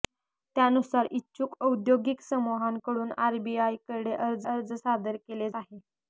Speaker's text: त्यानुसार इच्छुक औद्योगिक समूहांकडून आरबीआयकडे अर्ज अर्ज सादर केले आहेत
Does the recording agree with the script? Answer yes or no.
yes